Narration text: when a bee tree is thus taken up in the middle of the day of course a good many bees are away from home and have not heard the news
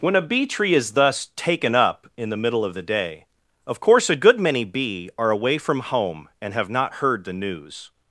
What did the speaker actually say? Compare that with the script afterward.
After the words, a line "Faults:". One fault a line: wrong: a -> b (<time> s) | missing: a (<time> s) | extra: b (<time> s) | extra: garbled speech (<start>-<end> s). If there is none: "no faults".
when a bee tree is thus taken up in the middle of the day of course a good many bee are away from home and have not heard the news
Faults:
wrong: bees -> bee (4.6 s)